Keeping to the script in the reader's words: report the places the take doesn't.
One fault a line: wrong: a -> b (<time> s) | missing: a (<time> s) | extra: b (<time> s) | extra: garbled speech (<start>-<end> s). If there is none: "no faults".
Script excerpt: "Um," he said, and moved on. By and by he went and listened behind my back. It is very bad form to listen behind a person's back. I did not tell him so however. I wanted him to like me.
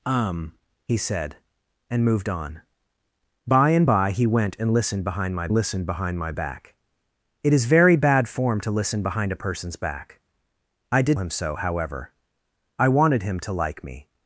extra: listened behind my (5.5 s)
missing: not tell (11.2 s)